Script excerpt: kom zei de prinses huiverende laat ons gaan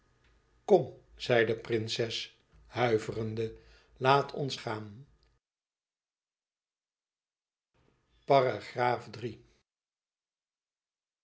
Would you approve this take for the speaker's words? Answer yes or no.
yes